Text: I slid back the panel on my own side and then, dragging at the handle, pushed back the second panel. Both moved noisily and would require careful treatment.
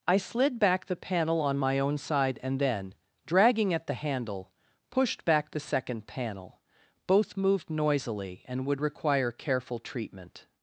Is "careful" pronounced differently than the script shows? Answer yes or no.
no